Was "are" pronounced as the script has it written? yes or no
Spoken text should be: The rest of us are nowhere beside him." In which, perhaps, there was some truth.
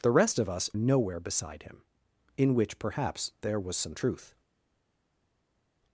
no